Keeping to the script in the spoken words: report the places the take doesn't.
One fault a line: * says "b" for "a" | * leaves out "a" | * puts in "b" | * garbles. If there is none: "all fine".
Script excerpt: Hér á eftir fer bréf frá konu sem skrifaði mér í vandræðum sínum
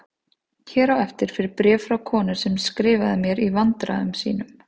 all fine